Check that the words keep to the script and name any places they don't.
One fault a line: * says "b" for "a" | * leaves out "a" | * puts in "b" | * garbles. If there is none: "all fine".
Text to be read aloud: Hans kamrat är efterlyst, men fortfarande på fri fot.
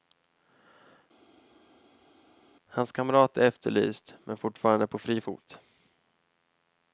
all fine